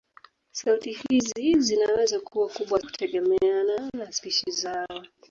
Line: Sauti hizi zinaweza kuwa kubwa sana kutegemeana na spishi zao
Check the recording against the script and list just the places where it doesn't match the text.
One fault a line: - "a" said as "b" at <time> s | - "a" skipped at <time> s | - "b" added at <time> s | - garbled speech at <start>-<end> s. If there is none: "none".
- "sana" skipped at 2.8 s